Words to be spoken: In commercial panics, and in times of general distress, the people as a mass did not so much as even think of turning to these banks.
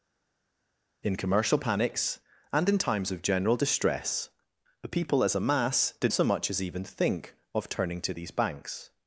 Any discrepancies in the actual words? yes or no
yes